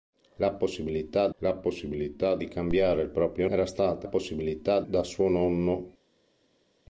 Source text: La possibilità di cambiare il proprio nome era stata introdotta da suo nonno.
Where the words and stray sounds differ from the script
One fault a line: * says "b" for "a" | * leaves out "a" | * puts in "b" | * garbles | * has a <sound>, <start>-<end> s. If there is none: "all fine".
* puts in "la possibilità"
* leaves out "nome"
* says "possibilità" for "introdotta"